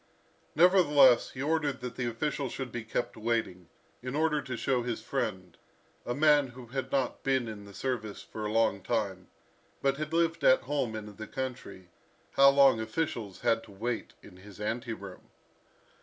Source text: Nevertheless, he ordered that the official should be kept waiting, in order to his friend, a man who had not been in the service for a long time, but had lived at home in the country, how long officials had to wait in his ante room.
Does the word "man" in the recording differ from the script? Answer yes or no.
no